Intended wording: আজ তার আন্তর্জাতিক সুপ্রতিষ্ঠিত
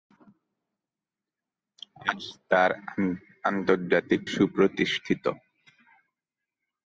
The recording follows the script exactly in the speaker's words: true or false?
true